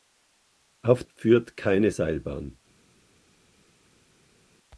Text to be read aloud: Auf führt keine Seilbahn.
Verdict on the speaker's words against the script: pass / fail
pass